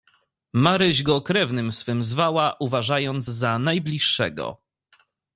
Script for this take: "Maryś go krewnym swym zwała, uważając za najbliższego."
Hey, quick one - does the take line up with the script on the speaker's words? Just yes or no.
yes